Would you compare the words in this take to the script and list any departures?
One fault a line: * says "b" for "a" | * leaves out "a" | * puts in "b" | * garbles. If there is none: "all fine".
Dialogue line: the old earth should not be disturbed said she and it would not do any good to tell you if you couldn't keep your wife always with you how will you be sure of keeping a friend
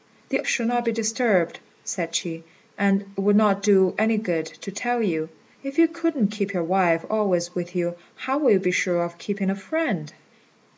* leaves out "old earth"